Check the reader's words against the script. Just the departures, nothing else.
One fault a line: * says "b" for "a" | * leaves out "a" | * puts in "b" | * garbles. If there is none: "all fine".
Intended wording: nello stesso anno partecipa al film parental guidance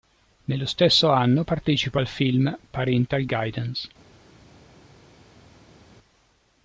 all fine